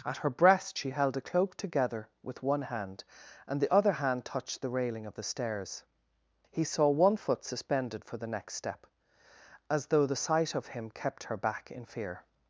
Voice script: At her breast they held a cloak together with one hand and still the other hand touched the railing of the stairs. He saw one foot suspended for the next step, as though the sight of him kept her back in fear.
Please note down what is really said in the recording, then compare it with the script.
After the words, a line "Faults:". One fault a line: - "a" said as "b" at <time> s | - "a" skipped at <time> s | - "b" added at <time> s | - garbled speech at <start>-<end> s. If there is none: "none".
At her breast she held a cloak together with one hand and the other hand touched the railing of the stairs. He saw one foot suspended for the next step, as though the sight of him kept her back in fear.
Faults:
- "they" said as "she" at 0.8 s
- "still" skipped at 3.6 s